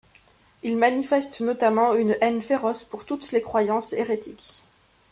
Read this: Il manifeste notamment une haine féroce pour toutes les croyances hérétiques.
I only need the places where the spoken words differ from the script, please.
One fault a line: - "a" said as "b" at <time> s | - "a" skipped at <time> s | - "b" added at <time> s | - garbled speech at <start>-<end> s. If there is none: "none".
none